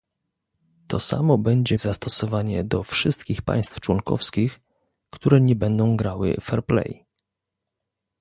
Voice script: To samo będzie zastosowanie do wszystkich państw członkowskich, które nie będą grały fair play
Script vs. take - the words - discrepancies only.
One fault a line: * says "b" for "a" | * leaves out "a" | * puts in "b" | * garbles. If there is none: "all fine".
all fine